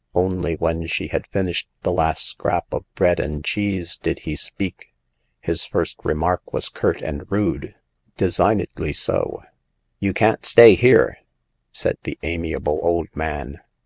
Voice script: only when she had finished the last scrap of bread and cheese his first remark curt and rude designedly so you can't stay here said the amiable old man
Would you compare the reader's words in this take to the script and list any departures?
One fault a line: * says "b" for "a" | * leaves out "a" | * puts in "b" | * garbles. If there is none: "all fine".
* puts in "did he speak"
* puts in "was"